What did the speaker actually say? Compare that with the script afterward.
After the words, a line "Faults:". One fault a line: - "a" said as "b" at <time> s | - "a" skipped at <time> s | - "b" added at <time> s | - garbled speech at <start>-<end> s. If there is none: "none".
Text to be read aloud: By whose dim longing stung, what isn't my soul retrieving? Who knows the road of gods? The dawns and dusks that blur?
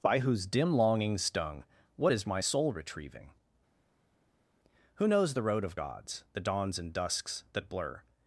By whose dim longing stung, what is my soul retrieving? Who knows the road of gods? The dawns and dusks that blur?
Faults:
- "isn't" said as "is" at 2.1 s